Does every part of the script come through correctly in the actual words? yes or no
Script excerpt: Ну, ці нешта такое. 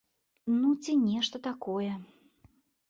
yes